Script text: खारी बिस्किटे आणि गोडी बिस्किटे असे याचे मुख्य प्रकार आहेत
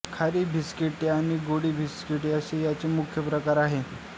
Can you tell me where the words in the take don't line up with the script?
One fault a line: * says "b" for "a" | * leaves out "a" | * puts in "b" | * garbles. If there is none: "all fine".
all fine